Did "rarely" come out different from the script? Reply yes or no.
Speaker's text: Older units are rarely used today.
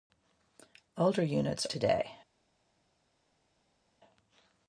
yes